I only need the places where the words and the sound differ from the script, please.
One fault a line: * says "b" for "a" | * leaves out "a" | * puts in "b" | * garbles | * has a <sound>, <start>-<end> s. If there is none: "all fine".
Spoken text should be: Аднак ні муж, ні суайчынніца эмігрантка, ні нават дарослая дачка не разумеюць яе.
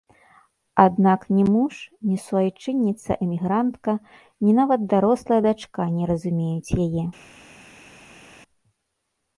all fine